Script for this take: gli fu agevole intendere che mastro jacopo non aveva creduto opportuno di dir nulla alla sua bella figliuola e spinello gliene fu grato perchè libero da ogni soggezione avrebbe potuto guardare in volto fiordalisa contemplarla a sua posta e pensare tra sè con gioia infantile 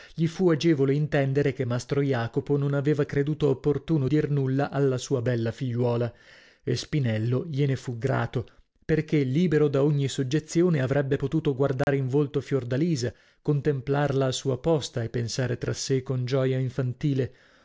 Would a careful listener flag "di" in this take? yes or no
yes